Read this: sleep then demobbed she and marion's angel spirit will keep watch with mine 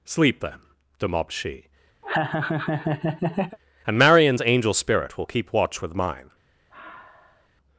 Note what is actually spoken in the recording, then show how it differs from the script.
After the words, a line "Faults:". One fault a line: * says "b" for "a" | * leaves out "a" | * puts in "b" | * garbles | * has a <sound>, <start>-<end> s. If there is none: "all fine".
sleep then demobbed she and marion's angel spirit will keep watch with mine
Faults:
* has a laugh, 2.0-3.6 s
* has a sigh, 6.7-7.5 s